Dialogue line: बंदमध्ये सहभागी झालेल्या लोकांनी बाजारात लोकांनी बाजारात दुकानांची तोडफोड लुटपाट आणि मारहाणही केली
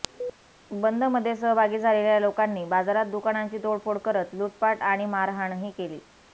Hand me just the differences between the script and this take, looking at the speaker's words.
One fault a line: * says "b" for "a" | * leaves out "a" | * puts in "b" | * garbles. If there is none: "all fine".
* leaves out "लोकांनी बाजारात"
* puts in "करत"